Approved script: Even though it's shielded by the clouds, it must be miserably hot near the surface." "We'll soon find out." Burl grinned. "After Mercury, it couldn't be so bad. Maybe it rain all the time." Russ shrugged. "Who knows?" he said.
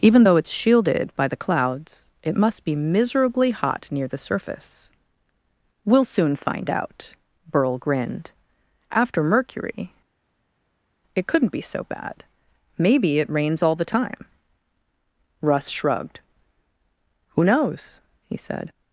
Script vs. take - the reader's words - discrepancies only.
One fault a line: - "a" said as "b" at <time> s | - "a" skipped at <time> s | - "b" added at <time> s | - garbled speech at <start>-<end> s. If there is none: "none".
- "rain" said as "rains" at 13.3 s